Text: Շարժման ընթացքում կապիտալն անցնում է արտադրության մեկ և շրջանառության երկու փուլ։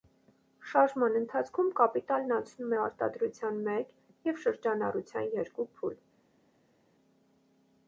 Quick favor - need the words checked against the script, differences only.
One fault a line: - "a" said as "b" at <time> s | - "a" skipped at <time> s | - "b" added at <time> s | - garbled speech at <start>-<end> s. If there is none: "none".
none